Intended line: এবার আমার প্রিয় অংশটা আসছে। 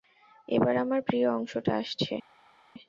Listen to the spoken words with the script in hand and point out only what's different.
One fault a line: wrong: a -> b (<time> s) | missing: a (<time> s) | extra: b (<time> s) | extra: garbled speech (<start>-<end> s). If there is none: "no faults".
no faults